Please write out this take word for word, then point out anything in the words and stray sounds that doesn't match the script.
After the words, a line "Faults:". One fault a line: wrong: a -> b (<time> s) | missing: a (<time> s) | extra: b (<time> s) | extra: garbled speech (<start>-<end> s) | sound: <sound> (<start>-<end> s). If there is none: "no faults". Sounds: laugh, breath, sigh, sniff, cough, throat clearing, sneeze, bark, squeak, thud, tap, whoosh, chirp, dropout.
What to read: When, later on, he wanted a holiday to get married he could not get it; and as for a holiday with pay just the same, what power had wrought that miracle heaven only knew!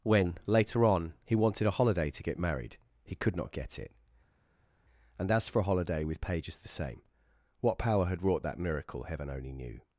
When, later on, he wanted a holiday to get married he could not get it; and as for a holiday with pages the same, what power had wrought that miracle heaven only knew!
Faults:
wrong: pay just -> pages (6.2 s)